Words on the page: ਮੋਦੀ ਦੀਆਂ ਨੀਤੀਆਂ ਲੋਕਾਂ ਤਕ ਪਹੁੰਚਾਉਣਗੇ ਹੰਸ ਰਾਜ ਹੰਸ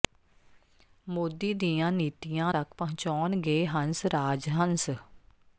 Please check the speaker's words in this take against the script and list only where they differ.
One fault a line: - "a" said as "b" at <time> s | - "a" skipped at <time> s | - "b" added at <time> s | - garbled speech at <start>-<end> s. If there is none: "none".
- "ਲੋਕਾਂ" skipped at 2.5 s